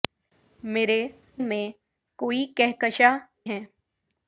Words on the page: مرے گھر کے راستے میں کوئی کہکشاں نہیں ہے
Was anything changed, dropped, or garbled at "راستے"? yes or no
yes